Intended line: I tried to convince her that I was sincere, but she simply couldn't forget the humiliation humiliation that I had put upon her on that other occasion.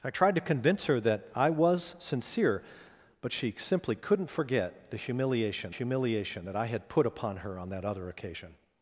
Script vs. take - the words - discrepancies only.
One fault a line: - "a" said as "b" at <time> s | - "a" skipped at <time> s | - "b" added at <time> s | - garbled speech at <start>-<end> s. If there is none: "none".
none